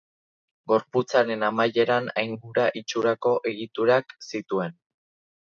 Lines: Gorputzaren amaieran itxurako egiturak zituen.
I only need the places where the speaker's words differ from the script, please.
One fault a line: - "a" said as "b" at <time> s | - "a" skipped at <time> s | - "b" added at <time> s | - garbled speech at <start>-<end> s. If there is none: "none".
- "aingura" added at 2.2 s